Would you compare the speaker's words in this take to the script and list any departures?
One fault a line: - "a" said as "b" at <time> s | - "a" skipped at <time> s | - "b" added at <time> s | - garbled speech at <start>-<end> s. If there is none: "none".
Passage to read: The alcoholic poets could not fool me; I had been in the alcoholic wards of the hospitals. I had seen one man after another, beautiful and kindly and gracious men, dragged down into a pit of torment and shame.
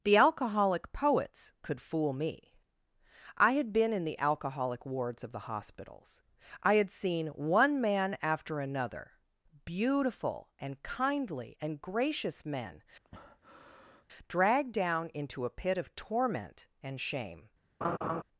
- "not" skipped at 1.8 s